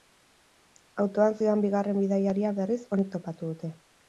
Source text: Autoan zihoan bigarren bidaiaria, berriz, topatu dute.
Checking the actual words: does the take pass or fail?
fail